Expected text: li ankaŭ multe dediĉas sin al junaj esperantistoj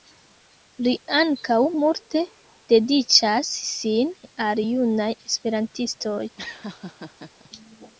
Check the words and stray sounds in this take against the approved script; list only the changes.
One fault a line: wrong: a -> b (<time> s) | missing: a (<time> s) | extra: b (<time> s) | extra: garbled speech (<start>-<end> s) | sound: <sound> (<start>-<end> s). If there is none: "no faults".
sound: laugh (6.4-7.5 s)